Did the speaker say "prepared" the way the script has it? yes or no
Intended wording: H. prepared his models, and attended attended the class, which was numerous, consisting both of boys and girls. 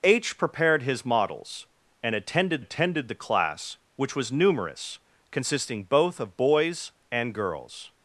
yes